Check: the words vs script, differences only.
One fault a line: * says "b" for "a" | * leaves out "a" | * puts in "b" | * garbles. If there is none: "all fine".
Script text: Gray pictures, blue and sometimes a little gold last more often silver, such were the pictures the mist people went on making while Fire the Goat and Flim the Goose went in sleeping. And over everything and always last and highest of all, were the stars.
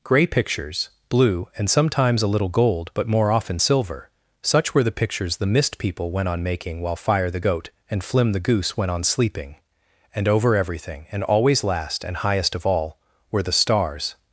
* says "but" for "last"
* says "on" for "in"